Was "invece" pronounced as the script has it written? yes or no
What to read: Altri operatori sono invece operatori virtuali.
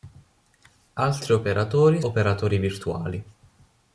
no